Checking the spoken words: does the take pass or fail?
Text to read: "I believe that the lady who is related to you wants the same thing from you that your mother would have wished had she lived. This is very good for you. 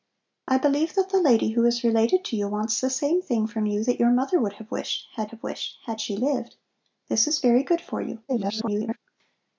fail